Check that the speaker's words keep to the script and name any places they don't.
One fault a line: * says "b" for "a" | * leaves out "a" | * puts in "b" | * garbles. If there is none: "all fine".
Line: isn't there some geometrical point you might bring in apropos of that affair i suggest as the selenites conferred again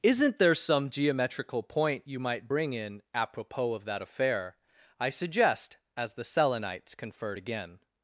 all fine